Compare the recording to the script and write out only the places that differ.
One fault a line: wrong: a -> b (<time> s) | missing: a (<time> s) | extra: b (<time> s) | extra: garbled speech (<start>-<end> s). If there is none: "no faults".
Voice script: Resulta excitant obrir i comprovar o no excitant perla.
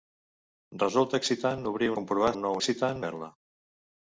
no faults